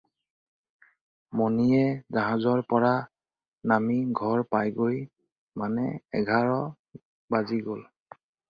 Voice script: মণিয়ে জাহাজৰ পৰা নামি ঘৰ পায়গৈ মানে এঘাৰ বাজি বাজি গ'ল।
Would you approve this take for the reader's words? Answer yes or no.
no